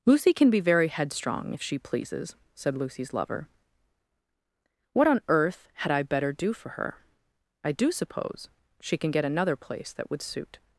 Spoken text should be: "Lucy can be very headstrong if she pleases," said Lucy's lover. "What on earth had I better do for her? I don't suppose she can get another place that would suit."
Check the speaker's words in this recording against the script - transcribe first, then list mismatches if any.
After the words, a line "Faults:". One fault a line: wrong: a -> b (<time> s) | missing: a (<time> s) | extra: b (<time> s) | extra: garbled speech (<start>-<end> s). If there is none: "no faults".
"Lucy can be very headstrong if she pleases," said Lucy's lover. "What on earth had I better do for her? I do suppose she can get another place that would suit."
Faults:
wrong: don't -> do (7.7 s)